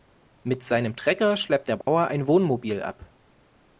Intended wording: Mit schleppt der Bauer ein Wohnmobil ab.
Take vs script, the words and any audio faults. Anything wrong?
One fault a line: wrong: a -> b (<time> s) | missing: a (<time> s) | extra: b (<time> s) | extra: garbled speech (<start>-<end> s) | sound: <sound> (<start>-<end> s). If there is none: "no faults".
extra: seinem Trecker (0.6 s)
sound: dropout (1.8-1.9 s)